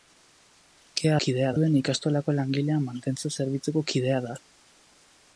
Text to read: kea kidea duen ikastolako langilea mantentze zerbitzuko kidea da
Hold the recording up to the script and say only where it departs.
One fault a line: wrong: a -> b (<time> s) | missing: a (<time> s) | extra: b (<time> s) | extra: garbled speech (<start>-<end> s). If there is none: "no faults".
no faults